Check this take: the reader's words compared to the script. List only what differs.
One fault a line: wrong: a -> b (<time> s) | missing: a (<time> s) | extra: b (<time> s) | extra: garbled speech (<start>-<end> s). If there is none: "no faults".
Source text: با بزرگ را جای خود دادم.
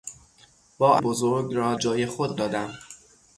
no faults